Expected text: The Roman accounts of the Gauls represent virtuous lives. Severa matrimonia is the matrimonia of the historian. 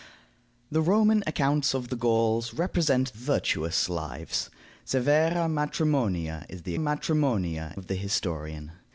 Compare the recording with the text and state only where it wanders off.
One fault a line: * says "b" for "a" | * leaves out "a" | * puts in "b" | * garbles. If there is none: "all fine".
all fine